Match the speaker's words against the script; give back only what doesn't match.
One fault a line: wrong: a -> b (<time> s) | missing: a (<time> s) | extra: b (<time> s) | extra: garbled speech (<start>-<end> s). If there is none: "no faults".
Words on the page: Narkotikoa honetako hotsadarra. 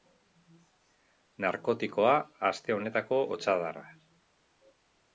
extra: aste (2.5 s)